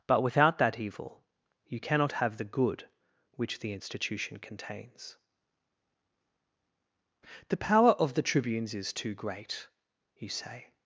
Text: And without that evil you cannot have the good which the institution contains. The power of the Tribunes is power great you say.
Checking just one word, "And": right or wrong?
wrong